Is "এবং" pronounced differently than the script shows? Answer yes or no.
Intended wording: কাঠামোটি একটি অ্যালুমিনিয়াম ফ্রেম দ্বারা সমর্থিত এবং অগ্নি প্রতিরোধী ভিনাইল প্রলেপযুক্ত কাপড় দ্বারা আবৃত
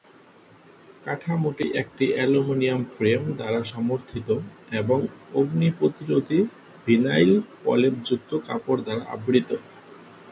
no